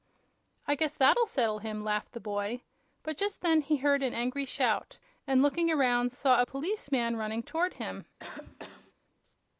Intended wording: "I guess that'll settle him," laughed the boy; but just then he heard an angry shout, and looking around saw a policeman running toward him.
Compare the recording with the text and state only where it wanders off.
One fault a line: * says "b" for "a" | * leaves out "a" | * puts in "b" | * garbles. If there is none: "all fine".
all fine